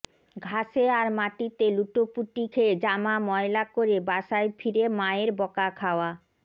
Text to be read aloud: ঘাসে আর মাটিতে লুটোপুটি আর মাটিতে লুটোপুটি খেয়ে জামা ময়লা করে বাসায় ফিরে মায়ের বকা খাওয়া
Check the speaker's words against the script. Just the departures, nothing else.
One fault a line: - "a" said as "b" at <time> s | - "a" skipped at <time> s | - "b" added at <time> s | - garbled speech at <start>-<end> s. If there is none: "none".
- "আর মাটিতে লুটোপুটি" skipped at 2.4 s